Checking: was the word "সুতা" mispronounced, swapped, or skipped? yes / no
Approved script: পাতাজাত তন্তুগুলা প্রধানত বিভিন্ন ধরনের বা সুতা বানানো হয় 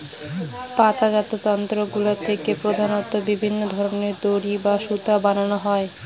no